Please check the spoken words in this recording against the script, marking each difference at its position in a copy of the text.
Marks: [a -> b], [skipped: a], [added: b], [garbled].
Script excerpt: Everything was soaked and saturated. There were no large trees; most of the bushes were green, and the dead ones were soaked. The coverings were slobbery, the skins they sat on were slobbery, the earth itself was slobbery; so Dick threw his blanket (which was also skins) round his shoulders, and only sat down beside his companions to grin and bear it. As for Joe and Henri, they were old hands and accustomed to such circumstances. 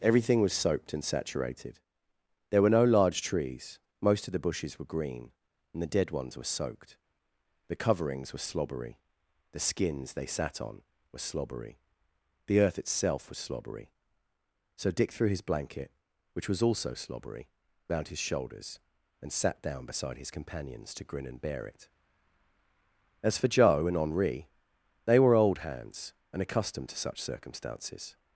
Everything was soaked and saturated. There were no large trees; most of the bushes were green, and the dead ones were soaked. The coverings were slobbery, the skins they sat on were slobbery, the earth itself was slobbery; so Dick threw his blanket (which was also [skins) -> slobbery] round his shoulders, and [skipped: only] sat down beside his companions to grin and bear it. As for Joe and Henri, they were old hands and accustomed to such circumstances.